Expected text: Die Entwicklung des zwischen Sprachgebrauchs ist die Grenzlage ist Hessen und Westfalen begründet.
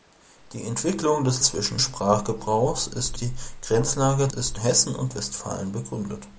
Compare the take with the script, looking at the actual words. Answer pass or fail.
pass